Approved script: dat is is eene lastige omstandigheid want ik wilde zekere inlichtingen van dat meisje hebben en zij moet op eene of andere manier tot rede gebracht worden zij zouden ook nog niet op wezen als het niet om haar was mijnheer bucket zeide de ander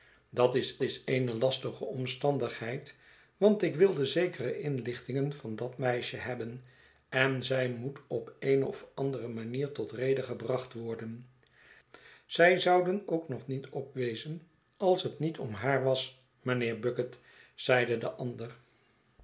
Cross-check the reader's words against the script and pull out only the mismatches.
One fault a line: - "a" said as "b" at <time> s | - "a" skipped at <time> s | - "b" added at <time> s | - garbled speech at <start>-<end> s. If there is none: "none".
none